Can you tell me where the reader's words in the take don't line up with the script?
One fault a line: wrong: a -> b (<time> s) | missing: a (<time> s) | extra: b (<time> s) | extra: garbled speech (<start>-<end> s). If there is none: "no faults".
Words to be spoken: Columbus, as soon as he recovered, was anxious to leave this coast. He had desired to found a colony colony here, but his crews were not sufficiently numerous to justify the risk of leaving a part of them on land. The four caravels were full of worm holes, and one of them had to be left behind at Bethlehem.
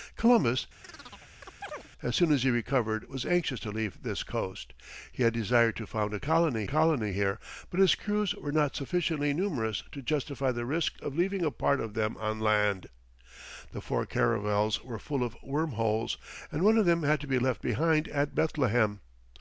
no faults